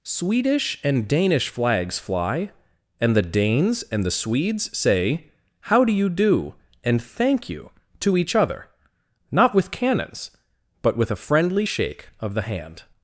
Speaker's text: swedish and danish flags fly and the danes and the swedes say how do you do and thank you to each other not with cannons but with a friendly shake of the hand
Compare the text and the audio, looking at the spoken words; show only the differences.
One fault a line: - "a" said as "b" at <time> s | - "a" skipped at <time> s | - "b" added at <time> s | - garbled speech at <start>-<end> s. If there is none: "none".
none